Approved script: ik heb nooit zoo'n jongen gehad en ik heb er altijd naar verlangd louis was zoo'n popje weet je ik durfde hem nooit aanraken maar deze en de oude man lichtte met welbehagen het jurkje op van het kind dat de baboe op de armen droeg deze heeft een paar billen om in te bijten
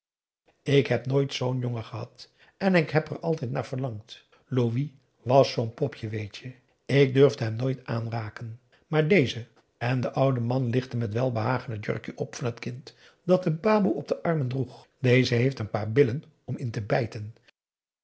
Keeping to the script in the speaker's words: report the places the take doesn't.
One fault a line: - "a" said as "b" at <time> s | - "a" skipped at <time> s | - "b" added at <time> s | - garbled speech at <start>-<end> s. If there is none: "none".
none